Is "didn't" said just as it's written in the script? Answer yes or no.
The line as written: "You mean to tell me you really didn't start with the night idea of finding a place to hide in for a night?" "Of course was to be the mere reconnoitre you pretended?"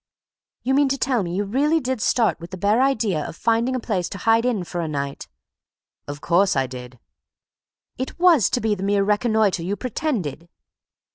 no